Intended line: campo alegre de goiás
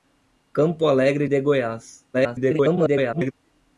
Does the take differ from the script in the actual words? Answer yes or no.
yes